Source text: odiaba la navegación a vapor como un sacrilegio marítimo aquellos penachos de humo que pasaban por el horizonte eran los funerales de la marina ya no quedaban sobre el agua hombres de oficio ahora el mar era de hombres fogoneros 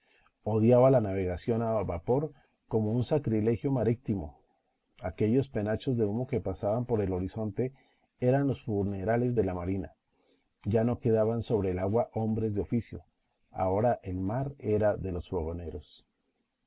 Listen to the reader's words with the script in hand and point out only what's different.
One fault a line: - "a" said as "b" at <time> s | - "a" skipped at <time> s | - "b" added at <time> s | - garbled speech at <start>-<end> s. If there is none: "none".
- "hombres" said as "los" at 15.1 s